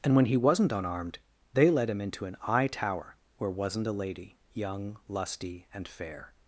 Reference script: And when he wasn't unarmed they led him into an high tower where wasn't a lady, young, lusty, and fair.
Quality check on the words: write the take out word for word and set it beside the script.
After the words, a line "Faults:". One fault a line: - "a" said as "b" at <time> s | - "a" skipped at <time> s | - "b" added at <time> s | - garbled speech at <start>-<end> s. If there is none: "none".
And when he wasn't unarmed they led him into an high tower where wasn't a lady, young, lusty, and fair.
Faults:
none